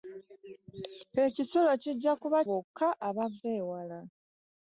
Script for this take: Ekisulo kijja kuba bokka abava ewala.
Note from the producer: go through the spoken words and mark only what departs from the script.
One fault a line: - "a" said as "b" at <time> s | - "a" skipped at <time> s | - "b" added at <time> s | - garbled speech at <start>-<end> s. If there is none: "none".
none